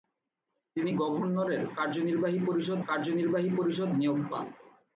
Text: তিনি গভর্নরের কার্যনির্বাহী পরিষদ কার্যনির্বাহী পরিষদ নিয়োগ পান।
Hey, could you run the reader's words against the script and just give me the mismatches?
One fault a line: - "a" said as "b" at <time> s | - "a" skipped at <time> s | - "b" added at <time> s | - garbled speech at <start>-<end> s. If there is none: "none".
none